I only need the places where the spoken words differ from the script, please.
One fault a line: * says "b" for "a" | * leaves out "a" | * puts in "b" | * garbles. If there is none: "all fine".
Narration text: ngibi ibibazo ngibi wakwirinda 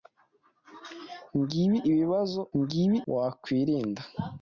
all fine